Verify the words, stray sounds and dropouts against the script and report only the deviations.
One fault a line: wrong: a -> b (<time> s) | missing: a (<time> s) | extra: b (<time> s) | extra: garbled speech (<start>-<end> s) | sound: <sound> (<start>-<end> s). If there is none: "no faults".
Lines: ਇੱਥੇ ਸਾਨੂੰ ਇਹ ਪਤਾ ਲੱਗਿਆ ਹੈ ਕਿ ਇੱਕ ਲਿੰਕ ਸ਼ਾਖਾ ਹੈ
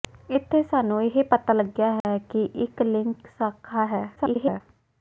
sound: dropout (2.0-2.0 s)
extra: garbled speech (4.2-4.6 s)